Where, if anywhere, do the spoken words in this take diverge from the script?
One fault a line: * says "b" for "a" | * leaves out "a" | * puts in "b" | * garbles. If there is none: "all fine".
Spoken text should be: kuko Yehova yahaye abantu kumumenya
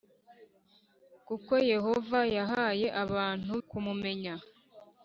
all fine